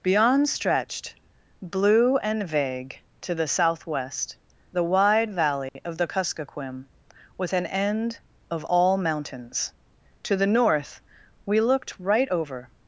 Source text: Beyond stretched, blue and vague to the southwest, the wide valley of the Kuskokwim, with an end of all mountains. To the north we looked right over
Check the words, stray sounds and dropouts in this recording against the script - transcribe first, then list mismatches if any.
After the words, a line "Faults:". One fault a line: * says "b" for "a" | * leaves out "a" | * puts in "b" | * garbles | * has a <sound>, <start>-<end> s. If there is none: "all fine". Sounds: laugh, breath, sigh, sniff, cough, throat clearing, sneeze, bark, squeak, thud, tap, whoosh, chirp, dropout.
Beyond stretched, blue and vague to the southwest, the wide valley of the Kuskokwim, with an end of all mountains. To the north we looked right over
Faults:
* has a dropout, 5.7-5.8 s